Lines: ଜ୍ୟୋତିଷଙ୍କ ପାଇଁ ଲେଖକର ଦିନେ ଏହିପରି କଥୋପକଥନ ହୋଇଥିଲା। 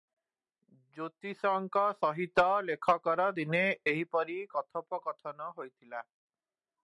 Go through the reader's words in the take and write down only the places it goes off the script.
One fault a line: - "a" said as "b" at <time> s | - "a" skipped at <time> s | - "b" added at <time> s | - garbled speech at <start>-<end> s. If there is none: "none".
- "ପାଇଁ" said as "ସହିତ" at 2.0 s